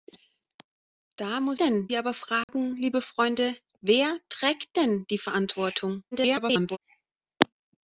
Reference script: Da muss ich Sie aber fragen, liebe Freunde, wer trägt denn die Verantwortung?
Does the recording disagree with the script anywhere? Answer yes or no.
yes